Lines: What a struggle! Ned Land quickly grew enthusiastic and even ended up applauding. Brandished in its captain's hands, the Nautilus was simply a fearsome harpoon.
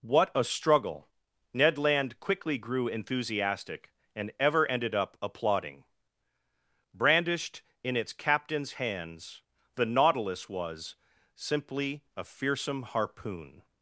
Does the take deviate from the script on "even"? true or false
true